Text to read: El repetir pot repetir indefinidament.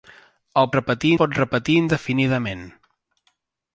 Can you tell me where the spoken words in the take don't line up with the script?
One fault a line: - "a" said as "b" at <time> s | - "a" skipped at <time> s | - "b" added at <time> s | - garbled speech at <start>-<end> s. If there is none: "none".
none